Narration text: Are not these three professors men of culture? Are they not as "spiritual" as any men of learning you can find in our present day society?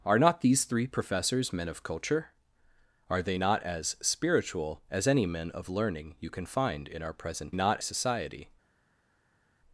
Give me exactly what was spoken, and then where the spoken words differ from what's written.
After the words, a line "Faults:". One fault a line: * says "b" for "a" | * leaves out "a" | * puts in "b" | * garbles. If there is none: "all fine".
Are not these three professors men of culture? Are they not as "spiritual" as any men of learning you can find in our present not society?
Faults:
* says "not" for "day"